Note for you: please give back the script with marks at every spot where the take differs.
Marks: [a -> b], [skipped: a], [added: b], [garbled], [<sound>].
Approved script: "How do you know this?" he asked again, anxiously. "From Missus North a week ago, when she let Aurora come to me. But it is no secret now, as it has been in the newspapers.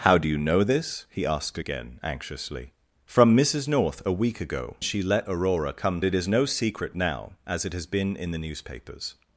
"How do you know this?" he asked again, anxiously. "From Missus North a week ago, [skipped: when] she let Aurora come [skipped: to me. But] it is no secret now, as it has been in the newspapers.